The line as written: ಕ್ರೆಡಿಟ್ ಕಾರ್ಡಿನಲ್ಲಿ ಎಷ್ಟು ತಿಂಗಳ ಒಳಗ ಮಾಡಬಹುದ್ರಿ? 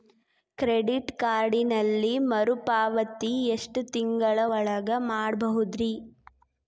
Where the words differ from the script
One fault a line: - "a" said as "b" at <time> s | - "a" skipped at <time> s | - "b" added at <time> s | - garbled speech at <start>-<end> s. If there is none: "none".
- "ಮರುಪಾವತಿ" added at 2.3 s